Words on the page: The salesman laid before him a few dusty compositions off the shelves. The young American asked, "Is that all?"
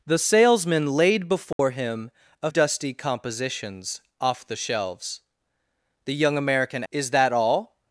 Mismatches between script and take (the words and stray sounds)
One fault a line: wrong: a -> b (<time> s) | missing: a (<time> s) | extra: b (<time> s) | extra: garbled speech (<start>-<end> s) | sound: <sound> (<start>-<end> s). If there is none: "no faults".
sound: dropout (1.5-1.6 s)
missing: few (2.5 s)
missing: asked (6.8 s)